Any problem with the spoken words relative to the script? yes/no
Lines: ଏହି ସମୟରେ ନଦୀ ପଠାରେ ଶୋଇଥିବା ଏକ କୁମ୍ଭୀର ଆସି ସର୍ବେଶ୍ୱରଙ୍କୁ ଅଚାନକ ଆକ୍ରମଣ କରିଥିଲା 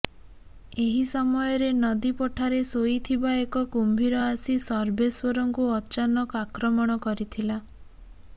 no